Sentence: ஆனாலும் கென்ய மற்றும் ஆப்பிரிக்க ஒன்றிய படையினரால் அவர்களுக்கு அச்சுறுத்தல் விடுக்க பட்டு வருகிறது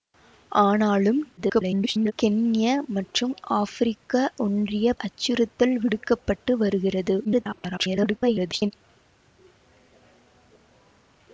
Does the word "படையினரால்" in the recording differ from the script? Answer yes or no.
yes